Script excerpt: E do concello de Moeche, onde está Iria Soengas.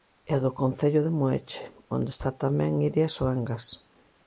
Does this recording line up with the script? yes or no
no